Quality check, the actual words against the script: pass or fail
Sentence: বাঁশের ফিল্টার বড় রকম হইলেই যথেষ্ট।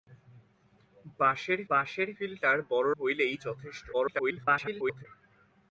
fail